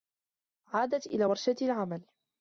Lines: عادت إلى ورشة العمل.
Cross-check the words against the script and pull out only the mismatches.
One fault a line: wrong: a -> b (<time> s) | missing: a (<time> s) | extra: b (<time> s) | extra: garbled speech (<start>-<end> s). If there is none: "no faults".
no faults